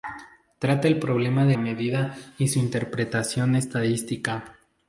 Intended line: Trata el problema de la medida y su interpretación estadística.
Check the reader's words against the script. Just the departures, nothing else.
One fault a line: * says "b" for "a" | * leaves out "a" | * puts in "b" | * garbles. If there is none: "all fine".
* leaves out "la"